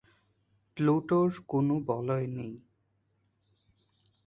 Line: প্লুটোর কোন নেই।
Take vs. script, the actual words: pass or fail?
fail